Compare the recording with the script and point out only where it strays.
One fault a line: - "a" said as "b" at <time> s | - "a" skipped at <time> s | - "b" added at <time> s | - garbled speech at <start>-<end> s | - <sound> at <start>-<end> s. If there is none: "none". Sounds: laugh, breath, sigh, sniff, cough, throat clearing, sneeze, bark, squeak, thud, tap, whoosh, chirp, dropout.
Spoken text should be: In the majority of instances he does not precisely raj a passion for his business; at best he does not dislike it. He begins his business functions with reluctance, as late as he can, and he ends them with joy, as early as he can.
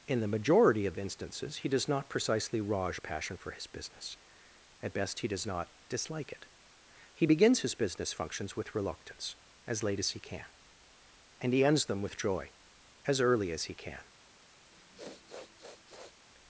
- sniff at 14.7-16.2 s